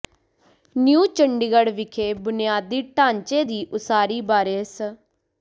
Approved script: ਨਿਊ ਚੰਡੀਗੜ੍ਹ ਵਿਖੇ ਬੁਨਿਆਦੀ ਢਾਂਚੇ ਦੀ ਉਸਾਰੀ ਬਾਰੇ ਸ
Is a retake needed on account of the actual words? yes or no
no